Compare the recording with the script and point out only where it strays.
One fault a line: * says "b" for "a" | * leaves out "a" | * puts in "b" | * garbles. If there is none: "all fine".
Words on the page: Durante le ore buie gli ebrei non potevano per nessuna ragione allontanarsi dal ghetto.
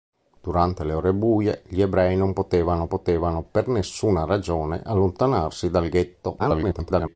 * puts in "potevano"
* garbles